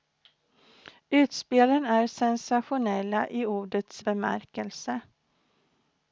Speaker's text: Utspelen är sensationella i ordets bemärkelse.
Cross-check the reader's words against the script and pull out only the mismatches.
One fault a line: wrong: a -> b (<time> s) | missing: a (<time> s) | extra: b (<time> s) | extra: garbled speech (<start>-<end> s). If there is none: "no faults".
no faults